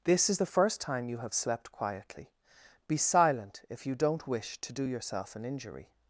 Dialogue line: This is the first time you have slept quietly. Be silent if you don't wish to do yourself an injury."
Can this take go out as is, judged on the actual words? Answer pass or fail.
pass